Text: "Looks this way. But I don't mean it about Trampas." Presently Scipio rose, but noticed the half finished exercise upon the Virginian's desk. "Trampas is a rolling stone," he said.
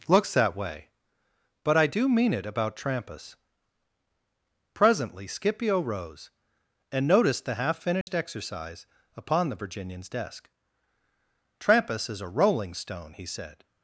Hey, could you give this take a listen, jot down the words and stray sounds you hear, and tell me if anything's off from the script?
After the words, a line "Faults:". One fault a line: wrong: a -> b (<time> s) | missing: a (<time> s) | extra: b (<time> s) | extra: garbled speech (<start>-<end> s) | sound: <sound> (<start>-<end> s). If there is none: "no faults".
"Looks that way. But I do mean it about Trampas." Presently Scipio rose, and noticed the half finished exercise upon the Virginian's desk. "Trampas is a rolling stone," he said.
Faults:
wrong: this -> that (0.3 s)
wrong: don't -> do (1.9 s)
wrong: but -> and (6.9 s)
sound: dropout (8.0-8.1 s)